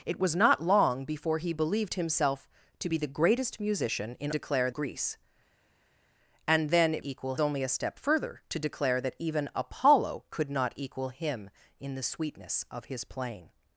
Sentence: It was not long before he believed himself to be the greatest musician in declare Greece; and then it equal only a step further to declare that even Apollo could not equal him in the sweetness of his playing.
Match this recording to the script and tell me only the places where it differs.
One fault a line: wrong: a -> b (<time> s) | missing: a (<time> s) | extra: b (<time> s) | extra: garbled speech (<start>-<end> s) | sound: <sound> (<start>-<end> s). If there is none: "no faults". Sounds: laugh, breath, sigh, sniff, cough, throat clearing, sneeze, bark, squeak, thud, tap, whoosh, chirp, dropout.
no faults